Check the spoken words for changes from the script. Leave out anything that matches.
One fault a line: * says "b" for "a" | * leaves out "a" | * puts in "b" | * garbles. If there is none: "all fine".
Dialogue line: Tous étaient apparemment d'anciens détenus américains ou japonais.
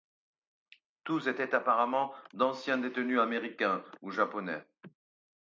all fine